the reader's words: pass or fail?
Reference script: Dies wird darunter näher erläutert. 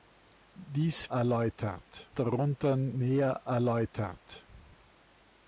fail